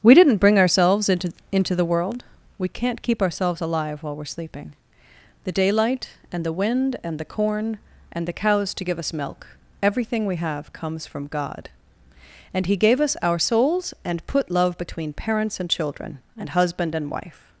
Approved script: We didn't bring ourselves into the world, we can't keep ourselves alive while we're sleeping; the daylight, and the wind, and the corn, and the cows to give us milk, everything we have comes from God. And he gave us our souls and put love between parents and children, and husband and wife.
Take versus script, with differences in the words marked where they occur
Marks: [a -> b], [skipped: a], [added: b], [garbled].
We didn't bring ourselves into [added: into] the world, we can't keep ourselves alive while we're sleeping; the daylight, and the wind, and the corn, and the cows to give us milk, everything we have comes from God. And he gave us our souls and put love between parents and children, and husband and wife.